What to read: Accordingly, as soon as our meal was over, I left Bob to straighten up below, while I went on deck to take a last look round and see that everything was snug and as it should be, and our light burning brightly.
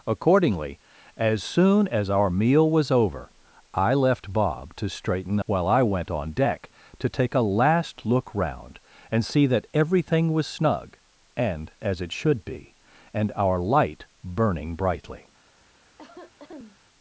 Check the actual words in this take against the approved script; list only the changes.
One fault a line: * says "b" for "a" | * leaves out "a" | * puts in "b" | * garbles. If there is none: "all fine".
* leaves out "up below"